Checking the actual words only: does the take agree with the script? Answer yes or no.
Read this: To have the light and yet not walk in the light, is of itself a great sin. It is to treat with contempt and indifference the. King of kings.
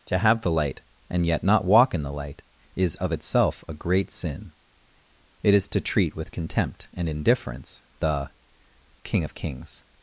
yes